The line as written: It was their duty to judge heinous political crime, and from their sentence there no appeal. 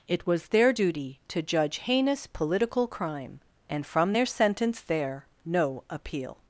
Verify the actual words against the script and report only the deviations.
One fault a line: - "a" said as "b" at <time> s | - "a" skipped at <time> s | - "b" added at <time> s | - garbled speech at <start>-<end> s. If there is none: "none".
none